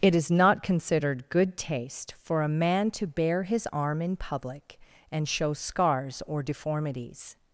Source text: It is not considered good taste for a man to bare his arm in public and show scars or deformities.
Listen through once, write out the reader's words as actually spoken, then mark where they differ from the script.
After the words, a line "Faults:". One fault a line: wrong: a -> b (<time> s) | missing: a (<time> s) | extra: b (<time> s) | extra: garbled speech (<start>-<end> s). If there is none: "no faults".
It is not considered good taste for a man to bare his arm in public and show scars or deformities.
Faults:
no faults